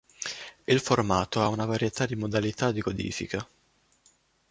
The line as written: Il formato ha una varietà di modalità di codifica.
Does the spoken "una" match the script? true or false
true